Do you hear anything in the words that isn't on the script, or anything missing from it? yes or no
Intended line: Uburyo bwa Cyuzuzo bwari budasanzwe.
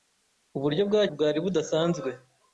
yes